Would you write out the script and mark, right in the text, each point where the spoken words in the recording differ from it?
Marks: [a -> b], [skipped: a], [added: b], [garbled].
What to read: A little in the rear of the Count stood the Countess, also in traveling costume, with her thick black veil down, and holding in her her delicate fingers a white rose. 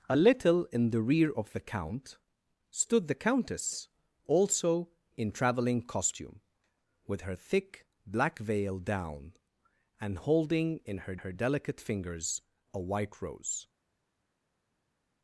A little in the rear of the Count stood the Countess, also in traveling costume, with her thick black veil down, and holding in her her delicate fingers a white rose.